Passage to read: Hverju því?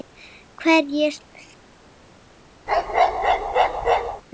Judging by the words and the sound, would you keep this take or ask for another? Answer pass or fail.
fail